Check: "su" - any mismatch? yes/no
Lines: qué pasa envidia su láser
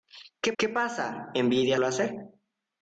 yes